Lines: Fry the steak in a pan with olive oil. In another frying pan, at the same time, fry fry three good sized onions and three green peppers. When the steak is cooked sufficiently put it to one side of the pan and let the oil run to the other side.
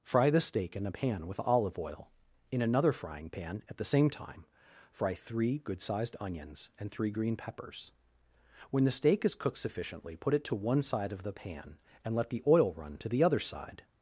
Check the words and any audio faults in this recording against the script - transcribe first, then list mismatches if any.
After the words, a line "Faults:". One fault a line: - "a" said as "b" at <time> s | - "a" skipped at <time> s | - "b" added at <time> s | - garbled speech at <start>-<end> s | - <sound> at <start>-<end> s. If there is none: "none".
Fry the steak in a pan with olive oil. In another frying pan, at the same time, fry three good sized onions and three green peppers. When the steak is cooked sufficiently put it to one side of the pan and let the oil run to the other side.
Faults:
- "fry" skipped at 5.1 s